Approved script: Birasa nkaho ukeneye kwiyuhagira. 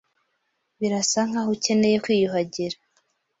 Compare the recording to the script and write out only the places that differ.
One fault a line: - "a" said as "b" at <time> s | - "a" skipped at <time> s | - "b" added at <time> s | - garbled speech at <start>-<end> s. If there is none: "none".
none